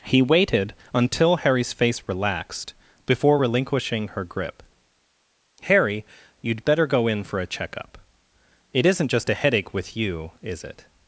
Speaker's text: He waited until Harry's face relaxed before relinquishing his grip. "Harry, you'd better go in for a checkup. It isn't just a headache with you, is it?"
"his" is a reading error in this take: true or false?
true